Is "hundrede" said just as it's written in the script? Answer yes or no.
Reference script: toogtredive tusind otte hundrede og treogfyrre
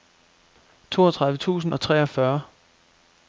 no